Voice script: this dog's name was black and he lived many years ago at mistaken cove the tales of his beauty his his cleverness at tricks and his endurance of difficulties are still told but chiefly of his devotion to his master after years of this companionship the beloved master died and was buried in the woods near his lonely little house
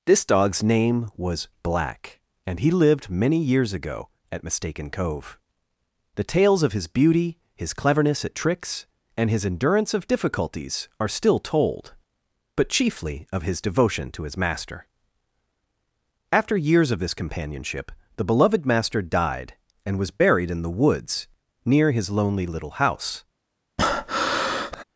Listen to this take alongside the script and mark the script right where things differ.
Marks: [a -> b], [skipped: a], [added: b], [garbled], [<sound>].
this dog's name was black and he lived many years ago at mistaken cove the tales of his beauty his [skipped: his] cleverness at tricks and his endurance of difficulties are still told but chiefly of his devotion to his master after years of this companionship the beloved master died and was buried in the woods near his lonely little house [breath]